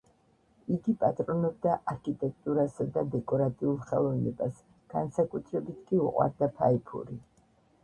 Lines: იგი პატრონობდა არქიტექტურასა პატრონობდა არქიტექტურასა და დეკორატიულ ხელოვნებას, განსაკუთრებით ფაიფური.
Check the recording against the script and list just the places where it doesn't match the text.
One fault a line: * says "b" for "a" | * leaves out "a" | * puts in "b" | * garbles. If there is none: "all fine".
* leaves out "პატრონობდა არქიტექტურასა"
* puts in "კი უყვარდა"